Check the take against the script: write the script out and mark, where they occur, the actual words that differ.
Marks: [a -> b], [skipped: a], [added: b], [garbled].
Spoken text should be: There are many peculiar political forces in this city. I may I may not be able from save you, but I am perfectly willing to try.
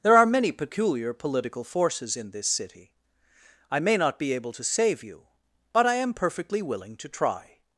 There are many peculiar political forces in this city. I may [skipped: I may] not be able [from -> to] save you, but I am perfectly willing to try.